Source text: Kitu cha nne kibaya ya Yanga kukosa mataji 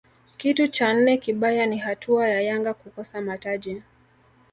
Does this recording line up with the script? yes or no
no